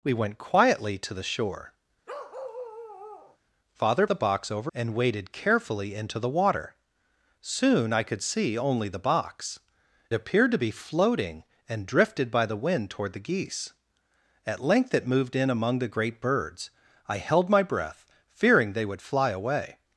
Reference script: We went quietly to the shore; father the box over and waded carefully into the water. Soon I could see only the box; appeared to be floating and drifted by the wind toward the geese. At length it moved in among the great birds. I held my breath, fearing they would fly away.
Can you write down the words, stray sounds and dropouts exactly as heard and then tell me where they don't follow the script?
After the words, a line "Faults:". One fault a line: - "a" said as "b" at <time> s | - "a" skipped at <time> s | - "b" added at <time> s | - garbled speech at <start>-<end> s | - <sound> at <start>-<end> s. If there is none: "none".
We went quietly to the shore; father the box over and waded carefully into the water. Soon I could see only the box; appeared to be floating and drifted by the wind toward the geese. At length it moved in among the great birds. I held my breath, fearing they would fly away.
Faults:
- bark at 2.1-3.4 s